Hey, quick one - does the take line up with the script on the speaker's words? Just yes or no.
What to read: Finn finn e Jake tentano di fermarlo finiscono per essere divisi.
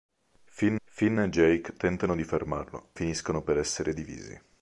yes